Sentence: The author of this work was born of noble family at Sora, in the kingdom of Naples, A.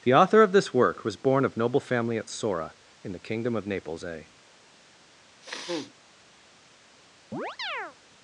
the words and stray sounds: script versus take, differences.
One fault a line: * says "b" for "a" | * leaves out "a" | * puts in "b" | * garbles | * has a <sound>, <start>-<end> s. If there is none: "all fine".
* has a sniff, 5.4-5.9 s
* has a chirp, 7.3-8.0 s